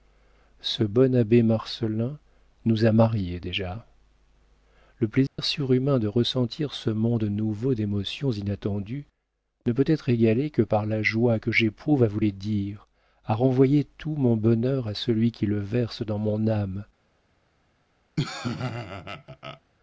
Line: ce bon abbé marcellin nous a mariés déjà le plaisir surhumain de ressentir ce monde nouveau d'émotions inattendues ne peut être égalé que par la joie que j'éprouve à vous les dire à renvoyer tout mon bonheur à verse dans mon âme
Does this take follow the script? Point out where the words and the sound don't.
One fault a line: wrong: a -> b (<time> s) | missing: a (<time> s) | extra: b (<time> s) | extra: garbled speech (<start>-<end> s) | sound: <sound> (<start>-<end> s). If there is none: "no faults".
sound: dropout (5.3-5.4 s)
extra: celui qui le (15.0 s)
sound: laugh (18.2-19.6 s)